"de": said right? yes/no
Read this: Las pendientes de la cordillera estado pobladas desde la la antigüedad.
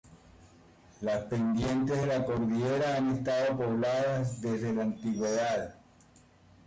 yes